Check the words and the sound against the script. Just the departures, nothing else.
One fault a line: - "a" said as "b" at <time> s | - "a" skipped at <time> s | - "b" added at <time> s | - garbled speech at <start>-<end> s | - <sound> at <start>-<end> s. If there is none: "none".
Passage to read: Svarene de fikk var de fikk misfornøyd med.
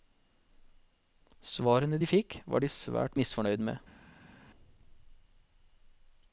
- "fikk" said as "svært" at 2.7 s